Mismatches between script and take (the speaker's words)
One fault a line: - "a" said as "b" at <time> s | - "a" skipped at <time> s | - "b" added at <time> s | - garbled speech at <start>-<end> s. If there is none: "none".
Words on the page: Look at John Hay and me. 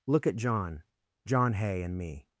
- "John" added at 1.3 s